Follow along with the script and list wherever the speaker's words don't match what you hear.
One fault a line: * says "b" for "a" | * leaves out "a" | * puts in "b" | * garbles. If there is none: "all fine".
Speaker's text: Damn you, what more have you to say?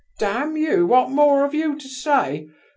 all fine